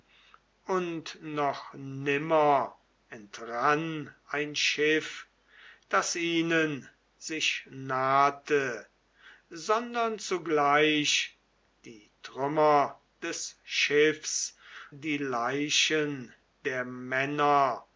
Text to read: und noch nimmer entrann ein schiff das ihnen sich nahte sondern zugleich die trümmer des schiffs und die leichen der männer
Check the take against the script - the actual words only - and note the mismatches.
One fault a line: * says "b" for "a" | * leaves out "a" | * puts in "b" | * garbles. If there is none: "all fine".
* leaves out "und"